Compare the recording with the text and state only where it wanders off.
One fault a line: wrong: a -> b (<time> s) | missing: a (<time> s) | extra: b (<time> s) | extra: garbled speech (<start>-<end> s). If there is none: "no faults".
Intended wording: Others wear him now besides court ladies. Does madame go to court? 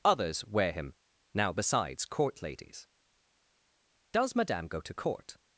no faults